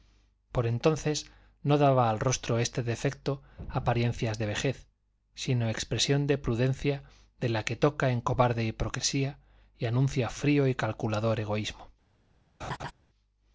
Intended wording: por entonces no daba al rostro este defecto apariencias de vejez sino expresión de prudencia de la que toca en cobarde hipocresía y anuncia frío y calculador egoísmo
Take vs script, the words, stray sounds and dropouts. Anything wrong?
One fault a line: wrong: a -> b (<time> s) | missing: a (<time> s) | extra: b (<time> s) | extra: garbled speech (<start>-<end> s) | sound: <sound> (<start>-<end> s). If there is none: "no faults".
sound: laugh (12.6-12.9 s)